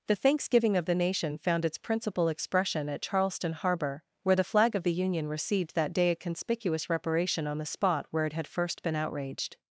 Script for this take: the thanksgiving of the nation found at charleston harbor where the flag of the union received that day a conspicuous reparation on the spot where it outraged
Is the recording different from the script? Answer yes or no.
yes